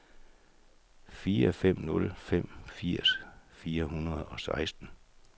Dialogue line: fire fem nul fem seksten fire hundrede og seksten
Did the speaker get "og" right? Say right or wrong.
right